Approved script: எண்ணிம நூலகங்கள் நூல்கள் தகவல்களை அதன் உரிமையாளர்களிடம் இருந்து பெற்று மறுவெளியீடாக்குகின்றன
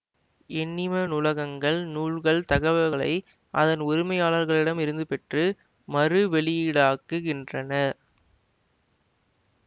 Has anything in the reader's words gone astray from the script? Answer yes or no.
no